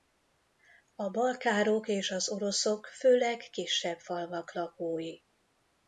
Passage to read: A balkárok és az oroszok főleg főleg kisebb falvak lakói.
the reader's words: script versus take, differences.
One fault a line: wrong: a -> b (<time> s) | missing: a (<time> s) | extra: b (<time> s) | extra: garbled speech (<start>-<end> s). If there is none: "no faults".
missing: főleg (3.4 s)